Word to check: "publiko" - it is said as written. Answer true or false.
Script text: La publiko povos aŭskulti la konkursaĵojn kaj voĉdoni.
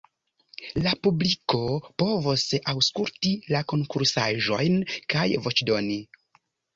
true